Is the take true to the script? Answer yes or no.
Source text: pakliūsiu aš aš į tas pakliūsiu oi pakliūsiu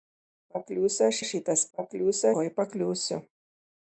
yes